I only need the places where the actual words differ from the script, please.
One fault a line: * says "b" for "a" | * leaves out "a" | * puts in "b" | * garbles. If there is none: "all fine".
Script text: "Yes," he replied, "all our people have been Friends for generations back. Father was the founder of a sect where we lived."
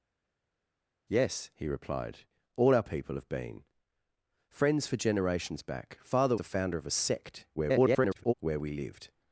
* leaves out "was"
* garbles